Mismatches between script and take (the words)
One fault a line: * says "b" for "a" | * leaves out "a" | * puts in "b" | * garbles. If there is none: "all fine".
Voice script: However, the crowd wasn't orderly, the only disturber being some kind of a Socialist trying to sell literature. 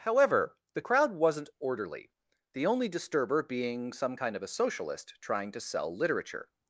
all fine